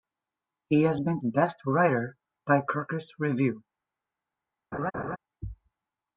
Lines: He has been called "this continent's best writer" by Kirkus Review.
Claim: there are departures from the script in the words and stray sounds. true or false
true